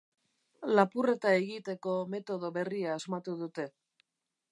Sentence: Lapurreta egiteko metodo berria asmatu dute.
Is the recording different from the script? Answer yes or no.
no